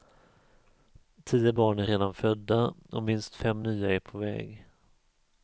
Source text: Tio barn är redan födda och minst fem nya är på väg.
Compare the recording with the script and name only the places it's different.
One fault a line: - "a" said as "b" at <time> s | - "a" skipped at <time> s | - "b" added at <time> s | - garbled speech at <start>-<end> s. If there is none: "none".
none